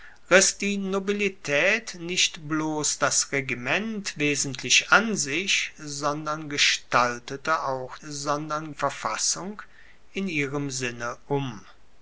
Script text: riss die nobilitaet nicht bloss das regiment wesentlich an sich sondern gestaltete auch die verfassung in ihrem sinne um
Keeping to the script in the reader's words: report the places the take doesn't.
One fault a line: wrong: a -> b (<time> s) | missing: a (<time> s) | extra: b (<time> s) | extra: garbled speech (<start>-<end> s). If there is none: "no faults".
wrong: die -> sondern (8.0 s)